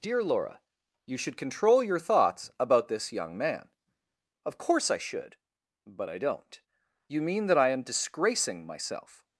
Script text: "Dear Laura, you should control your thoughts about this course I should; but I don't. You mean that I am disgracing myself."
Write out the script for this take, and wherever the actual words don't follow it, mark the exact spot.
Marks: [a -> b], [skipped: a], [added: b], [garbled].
"Dear Laura, you should control your thoughts about this [added: young man Of] course I should; but I don't. You mean that I am disgracing myself."